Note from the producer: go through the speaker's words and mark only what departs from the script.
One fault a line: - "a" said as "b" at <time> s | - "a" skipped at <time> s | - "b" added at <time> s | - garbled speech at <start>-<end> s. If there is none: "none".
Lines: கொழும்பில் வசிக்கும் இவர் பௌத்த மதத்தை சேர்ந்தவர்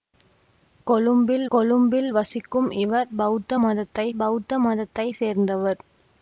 - "கொழும்பில்" added at 1.5 s
- "பௌத்த மதத்தை" added at 4.2 s